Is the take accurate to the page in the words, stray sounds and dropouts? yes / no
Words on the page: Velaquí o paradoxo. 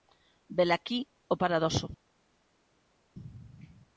yes